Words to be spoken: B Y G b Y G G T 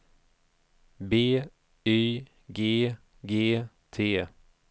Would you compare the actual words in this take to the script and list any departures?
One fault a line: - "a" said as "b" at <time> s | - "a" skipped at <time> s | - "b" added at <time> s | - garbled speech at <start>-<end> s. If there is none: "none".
- "b Y G" skipped at 2.9 s